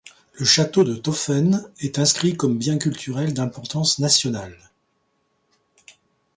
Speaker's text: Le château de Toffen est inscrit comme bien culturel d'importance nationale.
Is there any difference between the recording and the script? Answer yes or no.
no